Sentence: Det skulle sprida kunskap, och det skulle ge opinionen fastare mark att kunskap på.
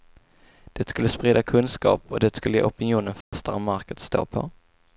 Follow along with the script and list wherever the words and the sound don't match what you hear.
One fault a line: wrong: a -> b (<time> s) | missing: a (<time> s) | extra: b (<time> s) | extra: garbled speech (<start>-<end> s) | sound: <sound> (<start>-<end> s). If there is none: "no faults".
sound: dropout (3.2-3.3 s)
wrong: kunskap -> stå (4.0 s)